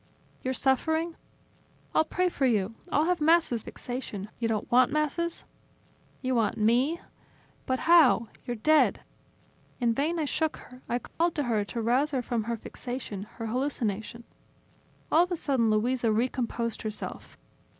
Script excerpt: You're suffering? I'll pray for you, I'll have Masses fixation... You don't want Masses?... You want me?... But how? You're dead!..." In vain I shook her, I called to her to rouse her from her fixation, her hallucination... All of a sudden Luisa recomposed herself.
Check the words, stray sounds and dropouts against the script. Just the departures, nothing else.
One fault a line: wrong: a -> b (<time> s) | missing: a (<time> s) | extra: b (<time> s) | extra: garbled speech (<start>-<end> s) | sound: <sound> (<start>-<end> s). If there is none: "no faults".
sound: dropout (11.1-11.2 s)